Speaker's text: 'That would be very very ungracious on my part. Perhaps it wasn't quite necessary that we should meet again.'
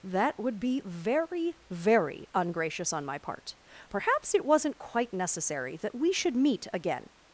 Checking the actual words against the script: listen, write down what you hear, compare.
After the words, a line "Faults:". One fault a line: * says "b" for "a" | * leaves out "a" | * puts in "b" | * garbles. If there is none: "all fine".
'That would be very very ungracious on my part. Perhaps it wasn't quite necessary that we should meet again.'
Faults:
all fine